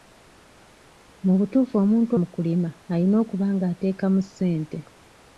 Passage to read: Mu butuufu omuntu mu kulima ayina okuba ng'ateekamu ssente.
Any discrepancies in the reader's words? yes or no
no